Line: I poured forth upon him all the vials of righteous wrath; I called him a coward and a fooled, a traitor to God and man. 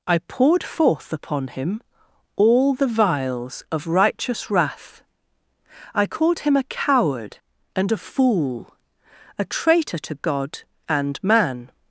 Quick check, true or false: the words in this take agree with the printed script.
false